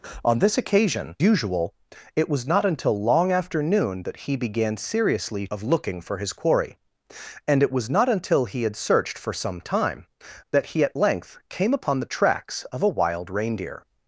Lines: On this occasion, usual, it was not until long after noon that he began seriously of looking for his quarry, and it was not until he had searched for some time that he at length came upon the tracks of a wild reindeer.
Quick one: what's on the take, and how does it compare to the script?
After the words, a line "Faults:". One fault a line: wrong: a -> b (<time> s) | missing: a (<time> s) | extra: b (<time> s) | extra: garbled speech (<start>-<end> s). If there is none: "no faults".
On this occasion, usual, it was not until long after noon that he began seriously of looking for his quarry, and it was not until he had searched for some time that he at length came upon the tracks of a wild reindeer.
Faults:
no faults